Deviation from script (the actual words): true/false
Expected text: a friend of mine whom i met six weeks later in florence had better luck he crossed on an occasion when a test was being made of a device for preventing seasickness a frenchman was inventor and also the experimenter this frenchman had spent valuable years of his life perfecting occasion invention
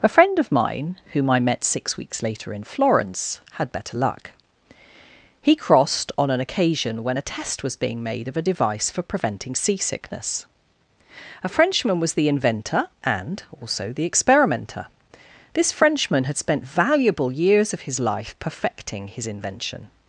true